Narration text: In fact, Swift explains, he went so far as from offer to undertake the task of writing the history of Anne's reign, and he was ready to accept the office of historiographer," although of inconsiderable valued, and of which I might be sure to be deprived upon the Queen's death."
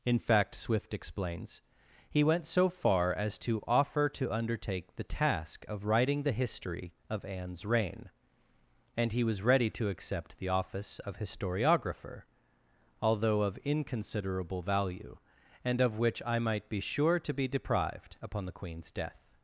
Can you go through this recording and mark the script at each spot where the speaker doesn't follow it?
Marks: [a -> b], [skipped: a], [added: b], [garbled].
In fact, Swift explains, he went so far as [from -> to] offer to undertake the task of writing the history of Anne's reign, and he was ready to accept the office of historiographer," although of inconsiderable [valued, -> value] and of which I might be sure to be deprived upon the Queen's death."